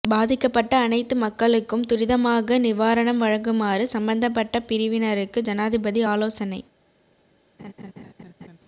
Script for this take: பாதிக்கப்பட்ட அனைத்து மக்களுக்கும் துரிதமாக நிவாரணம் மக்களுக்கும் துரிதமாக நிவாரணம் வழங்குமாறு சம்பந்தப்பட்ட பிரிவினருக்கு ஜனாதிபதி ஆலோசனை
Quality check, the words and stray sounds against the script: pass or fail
fail